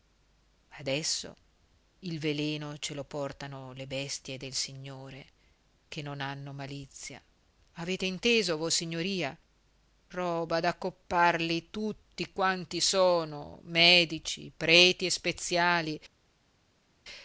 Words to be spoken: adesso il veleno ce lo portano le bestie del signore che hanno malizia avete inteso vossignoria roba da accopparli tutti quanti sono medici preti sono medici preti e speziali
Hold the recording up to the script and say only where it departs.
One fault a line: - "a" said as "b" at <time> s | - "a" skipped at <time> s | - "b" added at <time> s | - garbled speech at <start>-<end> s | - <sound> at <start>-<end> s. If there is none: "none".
- "non" added at 6.0 s
- "sono medici preti" skipped at 15.0 s